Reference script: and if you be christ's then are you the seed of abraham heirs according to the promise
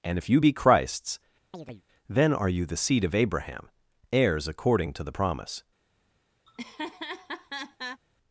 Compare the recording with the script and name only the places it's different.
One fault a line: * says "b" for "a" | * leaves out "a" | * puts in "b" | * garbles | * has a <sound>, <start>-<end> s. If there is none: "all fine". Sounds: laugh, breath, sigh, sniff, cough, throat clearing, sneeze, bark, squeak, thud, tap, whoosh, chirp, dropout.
* has a chirp, 1.5-1.8 s
* has a laugh, 6.5-8.0 s